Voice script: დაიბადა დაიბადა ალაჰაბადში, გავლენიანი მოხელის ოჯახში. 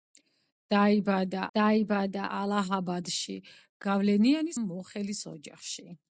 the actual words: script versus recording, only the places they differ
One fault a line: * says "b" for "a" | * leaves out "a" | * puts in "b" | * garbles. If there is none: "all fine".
all fine